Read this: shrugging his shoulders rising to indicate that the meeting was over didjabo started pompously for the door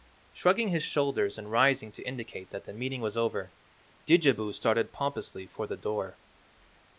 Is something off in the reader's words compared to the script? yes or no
yes